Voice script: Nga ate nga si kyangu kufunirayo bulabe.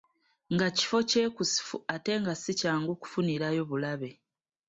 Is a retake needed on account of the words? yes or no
yes